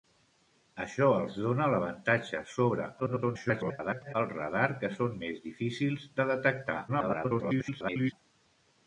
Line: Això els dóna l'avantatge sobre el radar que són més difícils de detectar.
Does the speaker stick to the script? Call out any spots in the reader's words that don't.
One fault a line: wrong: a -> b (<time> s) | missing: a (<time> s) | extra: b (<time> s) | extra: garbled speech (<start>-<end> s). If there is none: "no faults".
extra: garbled speech (3.0-4.1 s)
extra: garbled speech (6.9-8.1 s)